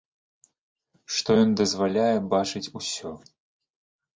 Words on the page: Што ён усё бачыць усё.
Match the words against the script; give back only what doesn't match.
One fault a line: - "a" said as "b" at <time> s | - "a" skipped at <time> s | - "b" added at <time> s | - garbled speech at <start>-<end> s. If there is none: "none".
- "усё" said as "дазваляе" at 1.6 s